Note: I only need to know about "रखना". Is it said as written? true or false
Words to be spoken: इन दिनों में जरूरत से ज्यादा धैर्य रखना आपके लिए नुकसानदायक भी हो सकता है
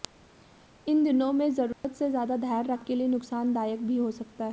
false